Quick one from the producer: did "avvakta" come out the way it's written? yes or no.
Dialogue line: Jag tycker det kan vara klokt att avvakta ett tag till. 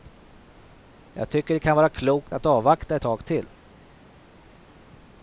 yes